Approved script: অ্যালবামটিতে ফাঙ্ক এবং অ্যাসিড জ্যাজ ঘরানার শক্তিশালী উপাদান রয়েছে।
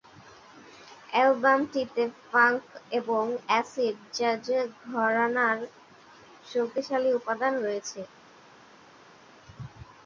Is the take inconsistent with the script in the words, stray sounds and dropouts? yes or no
no